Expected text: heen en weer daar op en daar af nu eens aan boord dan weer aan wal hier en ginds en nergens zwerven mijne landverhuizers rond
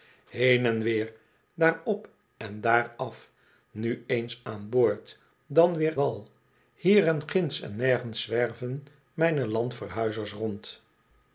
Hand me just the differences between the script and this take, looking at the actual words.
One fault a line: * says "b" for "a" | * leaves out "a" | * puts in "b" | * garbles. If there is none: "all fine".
* leaves out "aan"